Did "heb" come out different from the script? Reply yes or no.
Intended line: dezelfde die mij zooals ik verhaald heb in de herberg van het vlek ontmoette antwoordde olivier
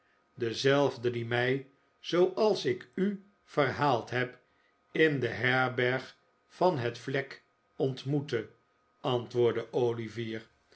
no